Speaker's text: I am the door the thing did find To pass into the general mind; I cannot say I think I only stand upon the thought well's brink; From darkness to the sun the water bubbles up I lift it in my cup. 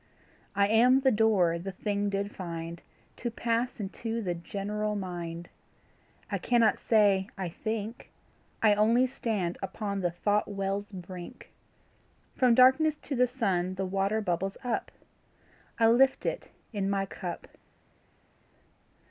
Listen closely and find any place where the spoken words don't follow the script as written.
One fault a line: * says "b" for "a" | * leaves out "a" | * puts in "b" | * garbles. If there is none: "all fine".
all fine